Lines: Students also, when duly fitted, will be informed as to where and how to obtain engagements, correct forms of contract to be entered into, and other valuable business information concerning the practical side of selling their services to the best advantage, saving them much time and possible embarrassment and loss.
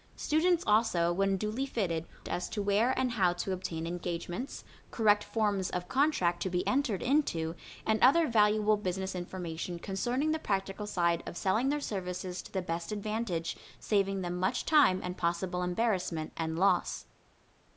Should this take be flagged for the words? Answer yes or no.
yes